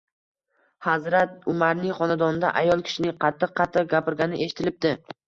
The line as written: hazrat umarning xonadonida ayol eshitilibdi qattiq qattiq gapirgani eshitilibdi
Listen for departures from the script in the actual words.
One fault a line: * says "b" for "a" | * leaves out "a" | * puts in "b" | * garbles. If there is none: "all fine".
* says "kishining" for "eshitilibdi"